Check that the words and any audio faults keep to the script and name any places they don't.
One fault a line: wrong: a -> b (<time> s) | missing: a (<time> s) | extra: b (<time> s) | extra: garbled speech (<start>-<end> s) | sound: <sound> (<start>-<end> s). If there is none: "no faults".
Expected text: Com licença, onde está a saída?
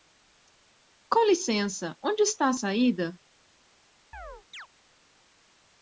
sound: chirp (4.1-4.7 s)